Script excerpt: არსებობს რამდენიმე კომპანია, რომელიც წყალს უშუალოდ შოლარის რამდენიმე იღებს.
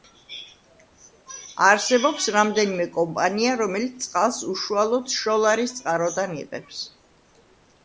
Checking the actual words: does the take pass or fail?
fail